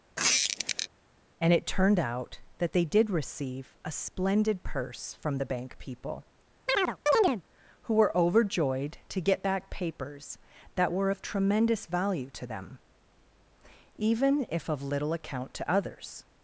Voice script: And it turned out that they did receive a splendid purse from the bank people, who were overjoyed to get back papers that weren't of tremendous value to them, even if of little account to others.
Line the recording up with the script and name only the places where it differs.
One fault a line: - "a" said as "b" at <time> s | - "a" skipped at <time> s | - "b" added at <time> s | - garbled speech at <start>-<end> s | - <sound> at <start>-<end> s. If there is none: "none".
- squeak at 0.2-0.9 s
- chirp at 6.7-7.4 s
- "weren't" said as "were" at 10.9 s